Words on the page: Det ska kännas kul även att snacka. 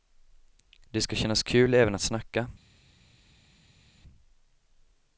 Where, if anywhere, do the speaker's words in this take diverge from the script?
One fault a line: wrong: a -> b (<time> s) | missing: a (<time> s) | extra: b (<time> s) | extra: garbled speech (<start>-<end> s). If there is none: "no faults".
no faults